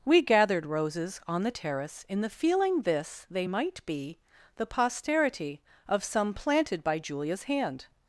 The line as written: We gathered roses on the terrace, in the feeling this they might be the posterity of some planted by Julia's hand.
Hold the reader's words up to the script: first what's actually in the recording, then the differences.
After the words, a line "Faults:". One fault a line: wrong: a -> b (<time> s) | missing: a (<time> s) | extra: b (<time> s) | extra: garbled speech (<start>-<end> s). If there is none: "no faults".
We gathered roses on the terrace, in the feeling this they might be the posterity of some planted by Julia's hand.
Faults:
no faults